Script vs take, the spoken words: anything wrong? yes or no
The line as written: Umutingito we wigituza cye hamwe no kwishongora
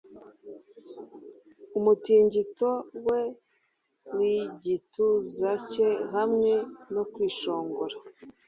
no